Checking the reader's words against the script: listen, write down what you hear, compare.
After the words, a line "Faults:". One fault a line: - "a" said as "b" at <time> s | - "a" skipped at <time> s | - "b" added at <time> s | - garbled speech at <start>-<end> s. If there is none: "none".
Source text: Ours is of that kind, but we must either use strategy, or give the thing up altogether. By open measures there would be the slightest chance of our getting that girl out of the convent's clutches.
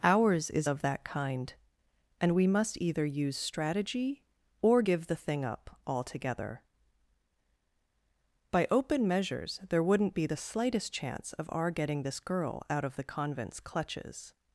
Ours is of that kind, and we must either use strategy, or give the thing up altogether. By open measures there wouldn't be the slightest chance of our getting this girl out of the convent's clutches.
Faults:
- "but" said as "and" at 2.2 s
- "would" said as "wouldn't" at 9.8 s
- "that" said as "this" at 12.0 s